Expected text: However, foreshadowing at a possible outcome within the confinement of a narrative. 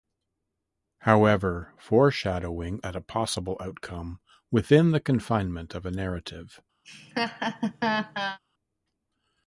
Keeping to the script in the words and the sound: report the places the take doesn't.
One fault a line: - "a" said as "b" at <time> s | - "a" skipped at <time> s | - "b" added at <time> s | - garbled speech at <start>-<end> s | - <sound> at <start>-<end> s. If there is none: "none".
- laugh at 6.8-8.4 s